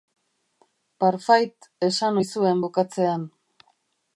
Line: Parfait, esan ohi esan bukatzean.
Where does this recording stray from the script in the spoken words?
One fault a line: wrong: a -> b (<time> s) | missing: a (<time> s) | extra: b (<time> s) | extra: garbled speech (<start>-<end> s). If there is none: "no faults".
wrong: esan -> zuen (2.3 s)